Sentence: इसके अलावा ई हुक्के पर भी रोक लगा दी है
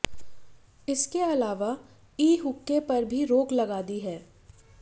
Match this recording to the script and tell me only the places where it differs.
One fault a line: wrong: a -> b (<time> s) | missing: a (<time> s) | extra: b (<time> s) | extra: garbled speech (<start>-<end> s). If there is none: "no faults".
no faults